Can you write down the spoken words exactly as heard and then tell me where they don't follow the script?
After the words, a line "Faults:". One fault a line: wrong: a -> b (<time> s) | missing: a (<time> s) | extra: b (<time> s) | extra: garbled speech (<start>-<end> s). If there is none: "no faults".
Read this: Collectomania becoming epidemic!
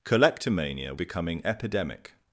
Collectomania becoming epidemic!
Faults:
no faults